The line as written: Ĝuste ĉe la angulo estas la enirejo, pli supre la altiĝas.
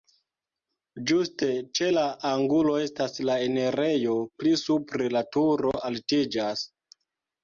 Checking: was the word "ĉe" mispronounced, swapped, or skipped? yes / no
no